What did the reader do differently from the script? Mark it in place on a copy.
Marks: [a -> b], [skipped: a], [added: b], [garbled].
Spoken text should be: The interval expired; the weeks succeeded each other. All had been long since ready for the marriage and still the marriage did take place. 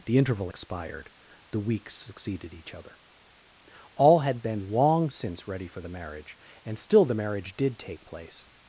The interval expired; the weeks succeeded each other. All had been long since ready for the marriage and still the marriage did take place.